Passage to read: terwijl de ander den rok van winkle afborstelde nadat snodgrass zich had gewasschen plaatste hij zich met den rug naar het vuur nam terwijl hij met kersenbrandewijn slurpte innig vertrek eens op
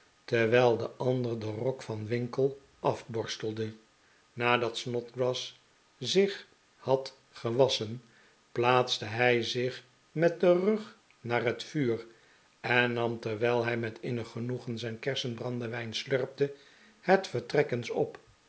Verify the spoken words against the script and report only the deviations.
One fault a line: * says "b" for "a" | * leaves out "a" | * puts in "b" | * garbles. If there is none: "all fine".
* puts in "en"
* puts in "innig genoegen zijn"
* says "het" for "innig"